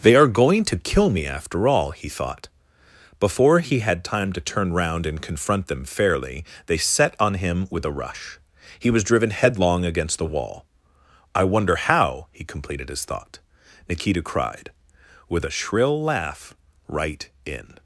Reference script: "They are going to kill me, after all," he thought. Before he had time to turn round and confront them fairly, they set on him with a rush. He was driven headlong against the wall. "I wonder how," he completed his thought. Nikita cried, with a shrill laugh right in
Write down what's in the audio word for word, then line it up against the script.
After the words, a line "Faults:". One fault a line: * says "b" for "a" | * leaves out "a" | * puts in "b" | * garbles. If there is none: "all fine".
"They are going to kill me, after all," he thought. Before he had time to turn round and confront them fairly, they set on him with a rush. He was driven headlong against the wall. "I wonder how," he completed his thought. Nikita cried, with a shrill laugh right in
Faults:
all fine